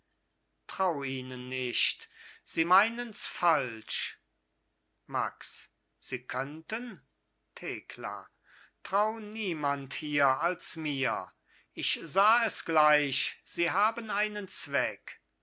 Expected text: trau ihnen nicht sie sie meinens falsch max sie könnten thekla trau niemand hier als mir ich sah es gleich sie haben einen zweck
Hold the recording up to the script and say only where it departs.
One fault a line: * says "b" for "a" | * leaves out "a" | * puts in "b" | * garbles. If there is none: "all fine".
* leaves out "sie"